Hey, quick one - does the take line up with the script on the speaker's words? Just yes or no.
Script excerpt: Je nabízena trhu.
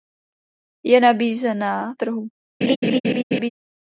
yes